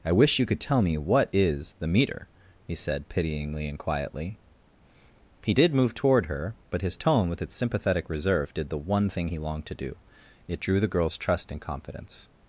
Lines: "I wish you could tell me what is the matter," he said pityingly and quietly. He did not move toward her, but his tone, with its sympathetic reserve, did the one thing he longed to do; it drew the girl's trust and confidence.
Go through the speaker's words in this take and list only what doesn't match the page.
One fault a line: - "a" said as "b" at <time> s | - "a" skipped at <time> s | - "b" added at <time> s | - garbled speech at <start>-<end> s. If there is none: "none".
- "matter" said as "meter" at 1.9 s
- "not" skipped at 5.7 s